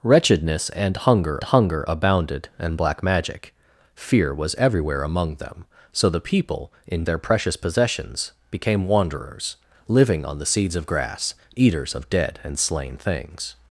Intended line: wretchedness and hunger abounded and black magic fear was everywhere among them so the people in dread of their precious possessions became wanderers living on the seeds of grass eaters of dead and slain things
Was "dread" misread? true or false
true